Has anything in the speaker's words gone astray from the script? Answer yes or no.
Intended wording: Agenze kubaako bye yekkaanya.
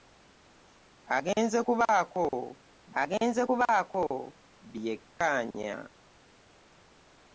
yes